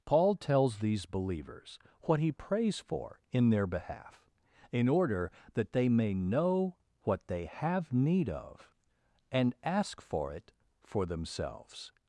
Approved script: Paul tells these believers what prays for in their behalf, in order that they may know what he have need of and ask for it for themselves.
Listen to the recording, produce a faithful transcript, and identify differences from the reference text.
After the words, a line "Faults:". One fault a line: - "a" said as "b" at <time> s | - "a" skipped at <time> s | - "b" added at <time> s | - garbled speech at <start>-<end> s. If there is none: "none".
Paul tells these believers what he prays for in their behalf, in order that they may know what they have need of and ask for it for themselves.
Faults:
- "he" added at 2.2 s
- "he" said as "they" at 7.3 s